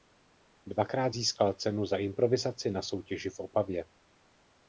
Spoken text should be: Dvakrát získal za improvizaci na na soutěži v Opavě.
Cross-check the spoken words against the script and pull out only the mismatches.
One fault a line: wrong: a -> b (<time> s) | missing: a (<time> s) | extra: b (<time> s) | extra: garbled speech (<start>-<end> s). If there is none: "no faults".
extra: cenu (1.5 s)
missing: na (2.8 s)